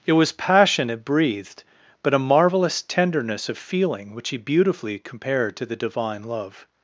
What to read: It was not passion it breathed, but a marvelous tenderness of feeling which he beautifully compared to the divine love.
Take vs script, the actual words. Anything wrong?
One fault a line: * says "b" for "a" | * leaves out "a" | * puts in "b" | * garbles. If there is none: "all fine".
* leaves out "not"